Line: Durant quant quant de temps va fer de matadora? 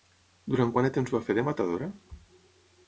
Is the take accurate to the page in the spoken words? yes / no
no